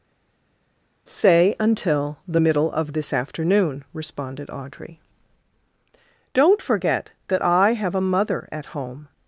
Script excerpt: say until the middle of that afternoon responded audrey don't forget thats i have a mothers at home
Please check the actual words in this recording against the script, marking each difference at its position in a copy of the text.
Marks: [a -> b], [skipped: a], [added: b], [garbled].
say until the middle of [that -> this] afternoon responded audrey don't forget [thats -> that] i have a [mothers -> mother] at home